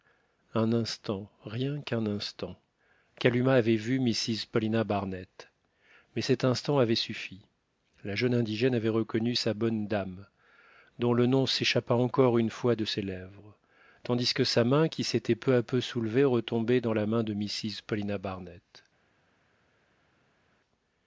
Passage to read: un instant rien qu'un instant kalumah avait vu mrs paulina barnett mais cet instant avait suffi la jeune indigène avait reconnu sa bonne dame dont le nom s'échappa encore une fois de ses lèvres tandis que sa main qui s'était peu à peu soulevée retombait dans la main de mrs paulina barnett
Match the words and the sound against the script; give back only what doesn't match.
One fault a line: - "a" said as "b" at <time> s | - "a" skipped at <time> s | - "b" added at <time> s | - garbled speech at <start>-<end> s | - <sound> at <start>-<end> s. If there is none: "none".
none